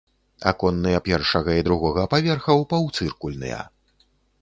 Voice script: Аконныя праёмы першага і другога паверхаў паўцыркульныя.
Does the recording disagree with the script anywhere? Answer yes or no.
yes